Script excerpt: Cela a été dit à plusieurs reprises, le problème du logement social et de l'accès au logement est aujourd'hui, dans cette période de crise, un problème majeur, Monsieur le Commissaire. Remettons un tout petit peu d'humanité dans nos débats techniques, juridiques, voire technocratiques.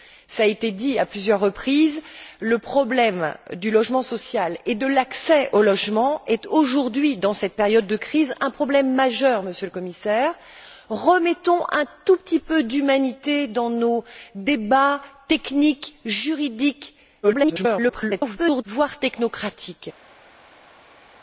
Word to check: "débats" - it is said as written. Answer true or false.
true